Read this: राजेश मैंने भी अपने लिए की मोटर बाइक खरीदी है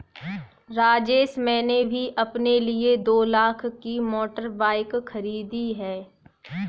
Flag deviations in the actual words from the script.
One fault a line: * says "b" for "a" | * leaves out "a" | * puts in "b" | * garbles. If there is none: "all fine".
* puts in "दो लाख"